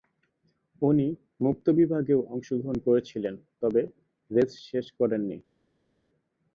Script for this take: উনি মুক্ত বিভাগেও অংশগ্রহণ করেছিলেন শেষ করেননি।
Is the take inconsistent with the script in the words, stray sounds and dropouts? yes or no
yes